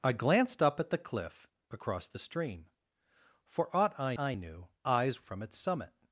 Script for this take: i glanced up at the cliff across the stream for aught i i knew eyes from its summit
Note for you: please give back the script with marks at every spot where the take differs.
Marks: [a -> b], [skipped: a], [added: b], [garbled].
i glanced up at the cliff across the stream for aught i i knew eyes from its summit